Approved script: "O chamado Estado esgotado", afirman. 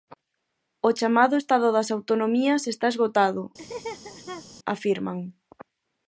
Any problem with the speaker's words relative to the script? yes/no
yes